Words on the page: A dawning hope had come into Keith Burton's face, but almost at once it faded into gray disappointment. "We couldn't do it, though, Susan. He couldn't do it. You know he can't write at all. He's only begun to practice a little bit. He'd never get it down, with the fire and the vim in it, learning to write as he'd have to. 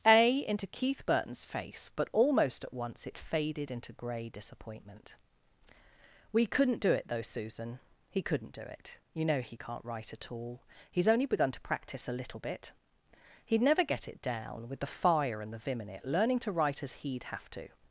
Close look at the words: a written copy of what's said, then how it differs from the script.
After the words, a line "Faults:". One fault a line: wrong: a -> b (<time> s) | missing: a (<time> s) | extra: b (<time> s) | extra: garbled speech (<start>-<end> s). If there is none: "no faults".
A into Keith Burton's face, but almost at once it faded into gray disappointment. "We couldn't do it, though, Susan. He couldn't do it. You know he can't write at all. He's only begun to practice a little bit. He'd never get it down, with the fire and the vim in it, learning to write as he'd have to.
Faults:
missing: dawning hope had come (0.4 s)